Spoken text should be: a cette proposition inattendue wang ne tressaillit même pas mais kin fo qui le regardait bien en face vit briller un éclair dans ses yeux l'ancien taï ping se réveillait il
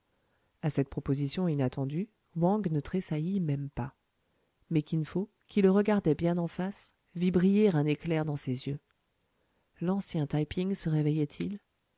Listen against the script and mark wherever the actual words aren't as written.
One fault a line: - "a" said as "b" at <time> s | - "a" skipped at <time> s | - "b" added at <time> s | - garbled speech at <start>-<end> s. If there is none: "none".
none